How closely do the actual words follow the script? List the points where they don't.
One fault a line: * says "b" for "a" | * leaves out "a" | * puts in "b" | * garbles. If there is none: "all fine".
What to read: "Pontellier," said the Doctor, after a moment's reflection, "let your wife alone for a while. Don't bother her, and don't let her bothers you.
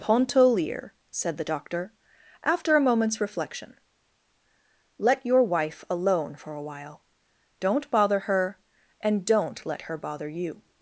* says "bother" for "bothers"